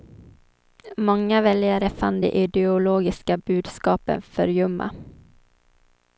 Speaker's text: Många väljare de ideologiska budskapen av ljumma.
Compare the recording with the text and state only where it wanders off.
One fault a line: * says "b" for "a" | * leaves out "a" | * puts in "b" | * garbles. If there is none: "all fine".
* puts in "fann"
* says "för" for "av"